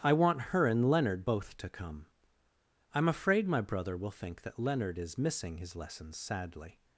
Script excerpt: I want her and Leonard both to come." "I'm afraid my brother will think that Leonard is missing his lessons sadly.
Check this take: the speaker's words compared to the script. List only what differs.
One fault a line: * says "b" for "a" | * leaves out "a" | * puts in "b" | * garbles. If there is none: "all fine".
all fine